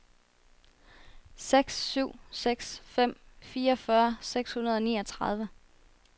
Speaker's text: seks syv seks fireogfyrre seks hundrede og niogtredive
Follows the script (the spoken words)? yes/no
no